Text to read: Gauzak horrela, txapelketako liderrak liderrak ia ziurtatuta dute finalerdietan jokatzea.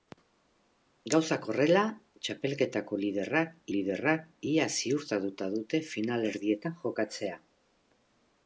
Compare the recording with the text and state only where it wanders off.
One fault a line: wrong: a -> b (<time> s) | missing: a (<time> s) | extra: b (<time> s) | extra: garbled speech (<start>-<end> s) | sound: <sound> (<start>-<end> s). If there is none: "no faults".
no faults